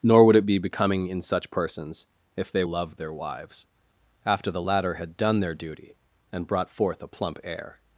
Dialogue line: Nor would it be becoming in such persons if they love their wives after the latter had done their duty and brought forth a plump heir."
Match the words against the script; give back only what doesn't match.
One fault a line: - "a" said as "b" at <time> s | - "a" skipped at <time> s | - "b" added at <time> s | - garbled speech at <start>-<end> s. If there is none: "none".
none